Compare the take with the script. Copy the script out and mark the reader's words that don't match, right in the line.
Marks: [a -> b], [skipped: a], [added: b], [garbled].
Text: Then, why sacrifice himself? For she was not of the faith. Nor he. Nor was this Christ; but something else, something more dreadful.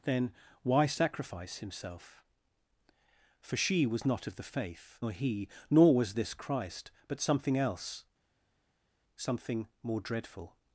Then, why sacrifice himself? For she was not of the faith. Nor he. Nor was this Christ; but something else, something more dreadful.